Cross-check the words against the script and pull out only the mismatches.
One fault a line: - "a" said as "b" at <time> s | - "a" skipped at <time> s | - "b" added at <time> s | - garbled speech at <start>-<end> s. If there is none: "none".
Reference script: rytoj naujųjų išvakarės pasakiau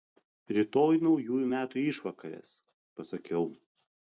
- "metų" added at 1.5 s